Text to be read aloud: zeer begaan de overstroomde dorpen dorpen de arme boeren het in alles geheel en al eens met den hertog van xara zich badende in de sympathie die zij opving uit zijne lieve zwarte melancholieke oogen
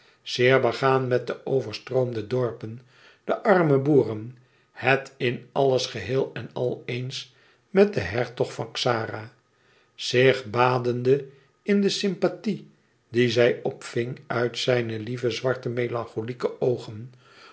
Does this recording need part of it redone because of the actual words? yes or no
yes